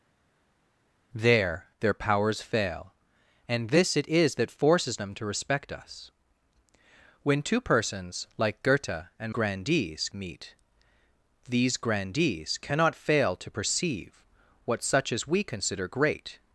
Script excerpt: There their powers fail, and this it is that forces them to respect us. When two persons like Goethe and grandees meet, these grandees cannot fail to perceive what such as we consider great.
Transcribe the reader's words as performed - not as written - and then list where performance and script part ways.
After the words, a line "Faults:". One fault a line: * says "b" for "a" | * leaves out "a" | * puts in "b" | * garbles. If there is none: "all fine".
There their powers fail, and this it is that forces them to respect us. When two persons like Goethe and grandees meet, these grandees cannot fail to perceive what such as we consider great.
Faults:
all fine